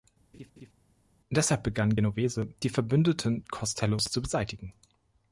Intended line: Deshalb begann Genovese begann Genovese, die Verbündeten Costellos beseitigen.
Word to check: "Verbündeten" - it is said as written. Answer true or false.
true